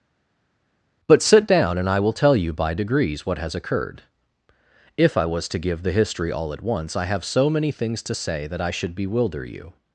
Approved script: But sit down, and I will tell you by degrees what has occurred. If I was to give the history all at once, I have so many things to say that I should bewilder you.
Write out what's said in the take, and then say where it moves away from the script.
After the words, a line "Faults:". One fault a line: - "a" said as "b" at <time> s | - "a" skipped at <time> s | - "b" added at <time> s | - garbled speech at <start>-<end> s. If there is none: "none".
But sit down, and I will tell you by degrees what has occurred. If I was to give the history all at once, I have so many things to say that I should bewilder you.
Faults:
none